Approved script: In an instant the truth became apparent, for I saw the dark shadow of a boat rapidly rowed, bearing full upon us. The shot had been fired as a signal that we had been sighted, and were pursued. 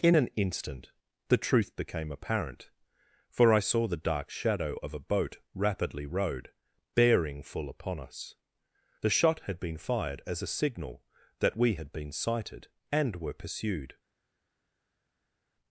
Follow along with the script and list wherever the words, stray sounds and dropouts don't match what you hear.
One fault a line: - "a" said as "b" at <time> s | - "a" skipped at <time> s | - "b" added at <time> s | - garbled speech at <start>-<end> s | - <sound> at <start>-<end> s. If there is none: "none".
none